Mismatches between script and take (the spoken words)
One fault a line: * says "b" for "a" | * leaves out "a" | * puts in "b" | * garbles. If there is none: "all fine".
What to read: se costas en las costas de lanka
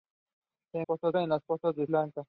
all fine